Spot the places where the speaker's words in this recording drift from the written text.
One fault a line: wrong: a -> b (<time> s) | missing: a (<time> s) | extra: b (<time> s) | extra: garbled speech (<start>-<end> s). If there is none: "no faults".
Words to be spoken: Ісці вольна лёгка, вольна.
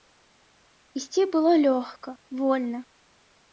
wrong: вольна -> было (1.4 s)